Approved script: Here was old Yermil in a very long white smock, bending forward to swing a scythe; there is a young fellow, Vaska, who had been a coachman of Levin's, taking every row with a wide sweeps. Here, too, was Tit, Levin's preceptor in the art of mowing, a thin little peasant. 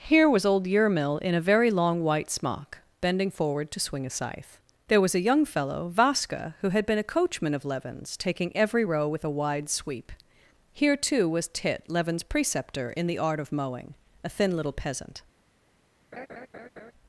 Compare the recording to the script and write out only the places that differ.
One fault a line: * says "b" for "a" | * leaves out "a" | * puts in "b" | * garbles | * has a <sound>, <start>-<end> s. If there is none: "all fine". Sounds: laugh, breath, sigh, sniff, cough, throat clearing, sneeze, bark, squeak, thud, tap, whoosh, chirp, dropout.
* says "was" for "is"
* says "sweep" for "sweeps"
* has a laugh, 16.1-16.9 s